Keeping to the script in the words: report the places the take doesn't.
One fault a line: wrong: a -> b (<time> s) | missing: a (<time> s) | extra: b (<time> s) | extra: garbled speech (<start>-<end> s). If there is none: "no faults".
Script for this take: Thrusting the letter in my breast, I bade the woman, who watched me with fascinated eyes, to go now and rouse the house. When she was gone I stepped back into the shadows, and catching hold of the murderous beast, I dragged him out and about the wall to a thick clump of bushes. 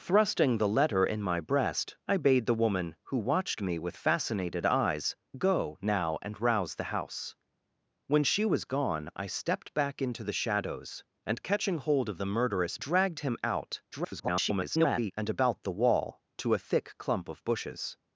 missing: to (5.2 s)
missing: beast I (12.8 s)
extra: garbled speech (13.9-15.1 s)